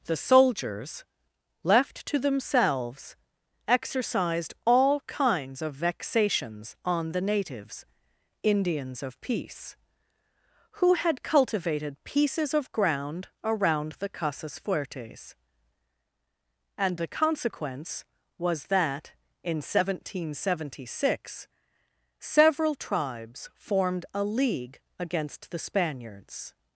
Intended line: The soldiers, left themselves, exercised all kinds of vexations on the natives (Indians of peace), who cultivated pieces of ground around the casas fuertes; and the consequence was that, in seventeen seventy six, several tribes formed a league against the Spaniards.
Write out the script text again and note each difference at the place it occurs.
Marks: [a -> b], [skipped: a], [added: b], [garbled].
The soldiers, left [added: to] themselves, exercised all kinds of vexations on the natives (Indians of peace), who [added: had] cultivated pieces of ground around the casas fuertes; and the consequence was that, in seventeen seventy six, several tribes formed a league against the Spaniards.